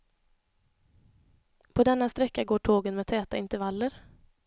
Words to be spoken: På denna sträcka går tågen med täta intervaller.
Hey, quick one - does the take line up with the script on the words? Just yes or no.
yes